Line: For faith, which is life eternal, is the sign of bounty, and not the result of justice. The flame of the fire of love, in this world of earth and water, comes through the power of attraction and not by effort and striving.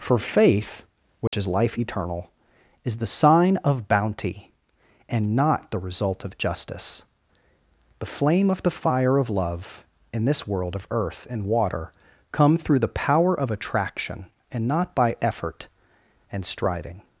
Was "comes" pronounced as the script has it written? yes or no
no